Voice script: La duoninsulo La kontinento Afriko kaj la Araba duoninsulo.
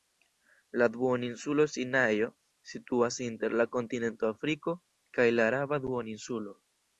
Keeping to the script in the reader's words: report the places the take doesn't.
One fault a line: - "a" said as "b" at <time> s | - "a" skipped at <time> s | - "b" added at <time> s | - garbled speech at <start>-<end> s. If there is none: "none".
- "Sinajo situas inter" added at 1.7 s